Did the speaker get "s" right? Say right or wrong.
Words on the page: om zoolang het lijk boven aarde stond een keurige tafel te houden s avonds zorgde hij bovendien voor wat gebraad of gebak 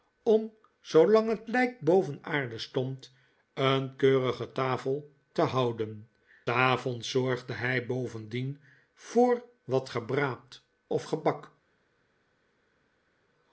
wrong